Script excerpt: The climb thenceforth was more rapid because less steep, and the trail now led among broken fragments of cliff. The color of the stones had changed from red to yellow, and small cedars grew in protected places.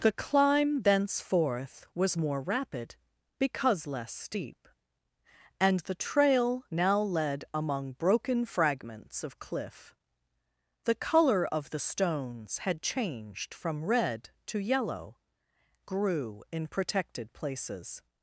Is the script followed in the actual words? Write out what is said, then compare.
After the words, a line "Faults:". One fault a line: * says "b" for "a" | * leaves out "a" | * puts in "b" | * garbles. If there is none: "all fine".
The climb thenceforth was more rapid because less steep, and the trail now led among broken fragments of cliff. The color of the stones had changed from red to yellow, grew in protected places.
Faults:
* leaves out "and small cedars"